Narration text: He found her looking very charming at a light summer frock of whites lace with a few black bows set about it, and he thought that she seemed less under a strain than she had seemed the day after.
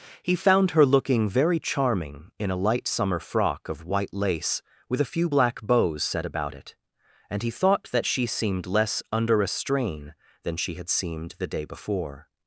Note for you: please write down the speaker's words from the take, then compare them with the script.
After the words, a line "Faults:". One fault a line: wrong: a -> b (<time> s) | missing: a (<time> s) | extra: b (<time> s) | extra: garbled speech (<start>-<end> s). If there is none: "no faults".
He found her looking very charming in a light summer frock of white lace with a few black bows set about it, and he thought that she seemed less under a strain than she had seemed the day before.
Faults:
wrong: at -> in (2.4 s)
wrong: whites -> white (3.9 s)
wrong: after -> before (11.6 s)